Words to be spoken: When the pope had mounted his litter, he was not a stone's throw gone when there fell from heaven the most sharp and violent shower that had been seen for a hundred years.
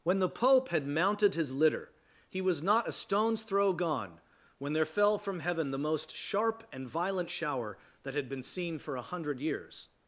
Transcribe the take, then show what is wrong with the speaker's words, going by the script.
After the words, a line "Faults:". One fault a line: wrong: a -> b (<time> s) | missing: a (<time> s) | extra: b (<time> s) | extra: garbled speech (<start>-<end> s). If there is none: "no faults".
When the pope had mounted his litter, he was not a stone's throw gone when there fell from heaven the most sharp and violent shower that had been seen for a hundred years.
Faults:
no faults